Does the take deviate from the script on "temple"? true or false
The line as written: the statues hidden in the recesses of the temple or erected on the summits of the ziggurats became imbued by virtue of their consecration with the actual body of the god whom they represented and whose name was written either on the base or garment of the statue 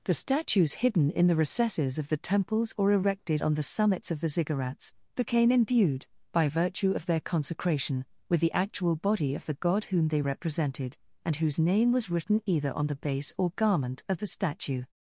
true